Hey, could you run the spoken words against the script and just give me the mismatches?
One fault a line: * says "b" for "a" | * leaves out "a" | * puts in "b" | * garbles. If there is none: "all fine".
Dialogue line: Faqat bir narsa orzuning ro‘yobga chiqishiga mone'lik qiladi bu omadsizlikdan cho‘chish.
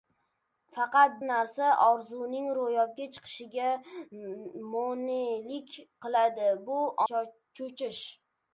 * leaves out "bir"
* leaves out "omadsizlikdan"